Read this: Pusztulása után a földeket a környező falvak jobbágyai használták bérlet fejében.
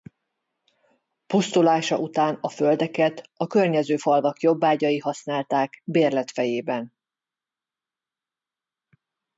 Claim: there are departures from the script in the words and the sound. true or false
false